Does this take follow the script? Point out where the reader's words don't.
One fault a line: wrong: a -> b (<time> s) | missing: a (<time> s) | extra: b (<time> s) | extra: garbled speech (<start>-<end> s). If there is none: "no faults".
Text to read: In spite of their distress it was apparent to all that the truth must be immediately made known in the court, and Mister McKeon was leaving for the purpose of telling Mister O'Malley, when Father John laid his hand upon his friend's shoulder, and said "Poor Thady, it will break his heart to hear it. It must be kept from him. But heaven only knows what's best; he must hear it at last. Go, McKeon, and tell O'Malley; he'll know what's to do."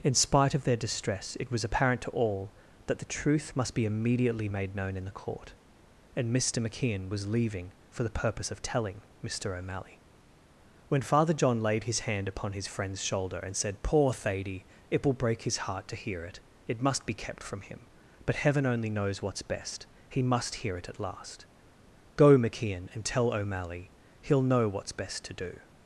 extra: best (24.9 s)